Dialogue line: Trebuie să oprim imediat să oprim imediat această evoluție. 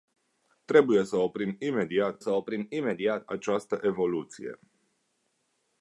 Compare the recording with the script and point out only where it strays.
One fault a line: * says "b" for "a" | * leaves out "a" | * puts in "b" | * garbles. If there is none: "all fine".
all fine